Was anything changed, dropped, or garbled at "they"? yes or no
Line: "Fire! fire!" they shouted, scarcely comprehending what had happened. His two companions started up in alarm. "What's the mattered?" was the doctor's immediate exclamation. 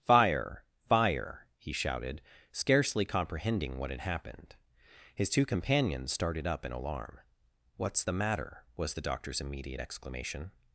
yes